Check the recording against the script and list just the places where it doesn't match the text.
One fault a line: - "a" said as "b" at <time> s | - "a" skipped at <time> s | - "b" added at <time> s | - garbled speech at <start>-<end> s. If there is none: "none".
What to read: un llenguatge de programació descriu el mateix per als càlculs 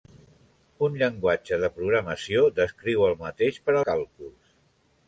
- "als" skipped at 3.8 s